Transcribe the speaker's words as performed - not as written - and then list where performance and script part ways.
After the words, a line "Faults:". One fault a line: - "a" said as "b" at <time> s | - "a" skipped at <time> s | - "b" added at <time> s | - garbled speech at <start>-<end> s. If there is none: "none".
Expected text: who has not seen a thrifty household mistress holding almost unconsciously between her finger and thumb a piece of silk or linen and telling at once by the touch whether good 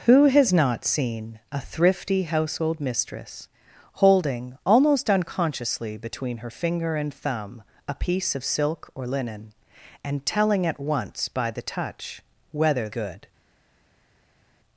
who has not seen a thrifty household mistress holding almost unconsciously between her finger and thumb a piece of silk or linen and telling at once by the touch whether good
Faults:
none